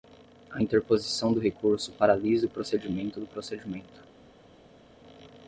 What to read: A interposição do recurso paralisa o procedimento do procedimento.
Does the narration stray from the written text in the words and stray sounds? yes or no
no